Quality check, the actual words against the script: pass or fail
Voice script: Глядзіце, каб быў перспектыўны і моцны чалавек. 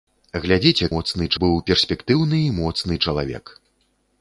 fail